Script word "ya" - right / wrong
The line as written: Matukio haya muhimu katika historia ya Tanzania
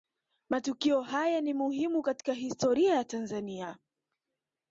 right